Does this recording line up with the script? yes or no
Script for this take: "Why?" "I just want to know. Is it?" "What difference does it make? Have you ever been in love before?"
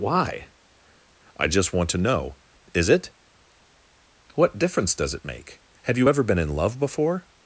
yes